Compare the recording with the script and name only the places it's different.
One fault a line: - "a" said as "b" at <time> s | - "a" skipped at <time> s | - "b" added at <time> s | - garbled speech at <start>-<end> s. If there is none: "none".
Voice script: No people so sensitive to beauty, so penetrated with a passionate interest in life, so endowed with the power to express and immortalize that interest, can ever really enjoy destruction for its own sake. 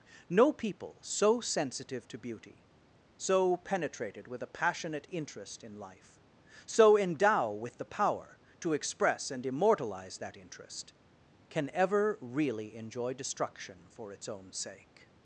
- "endowed" said as "endow" at 7.0 s